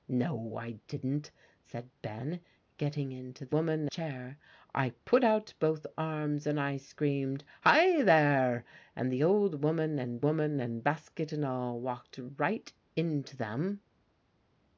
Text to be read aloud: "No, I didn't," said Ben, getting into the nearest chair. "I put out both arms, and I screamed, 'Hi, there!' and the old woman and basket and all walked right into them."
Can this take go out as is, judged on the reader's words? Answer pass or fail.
fail